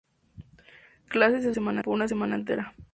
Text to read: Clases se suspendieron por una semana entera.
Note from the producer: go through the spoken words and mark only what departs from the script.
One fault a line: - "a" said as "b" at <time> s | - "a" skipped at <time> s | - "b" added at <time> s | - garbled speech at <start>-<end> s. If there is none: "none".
- "suspendieron" said as "semana" at 1.5 s